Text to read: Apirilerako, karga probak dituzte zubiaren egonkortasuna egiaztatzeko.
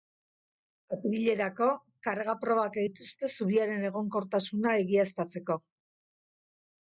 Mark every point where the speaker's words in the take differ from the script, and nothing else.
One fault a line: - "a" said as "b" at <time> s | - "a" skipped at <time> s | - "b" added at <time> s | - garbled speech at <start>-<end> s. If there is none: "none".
none